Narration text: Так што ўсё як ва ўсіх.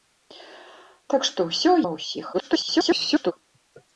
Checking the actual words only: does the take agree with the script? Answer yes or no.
no